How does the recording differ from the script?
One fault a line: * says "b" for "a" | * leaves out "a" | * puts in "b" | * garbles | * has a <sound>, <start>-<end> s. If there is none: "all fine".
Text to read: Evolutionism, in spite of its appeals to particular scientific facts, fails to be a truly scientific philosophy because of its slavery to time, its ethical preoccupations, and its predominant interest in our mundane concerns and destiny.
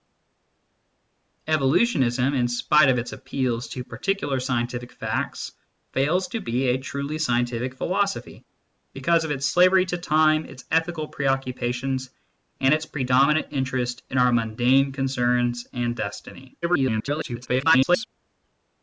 * garbles